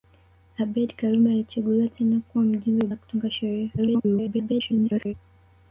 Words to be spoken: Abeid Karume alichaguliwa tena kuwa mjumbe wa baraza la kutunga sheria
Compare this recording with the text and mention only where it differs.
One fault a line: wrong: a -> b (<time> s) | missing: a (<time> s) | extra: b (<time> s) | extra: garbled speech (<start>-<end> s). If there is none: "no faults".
missing: baraza (2.9 s)
extra: garbled speech (3.8-5.1 s)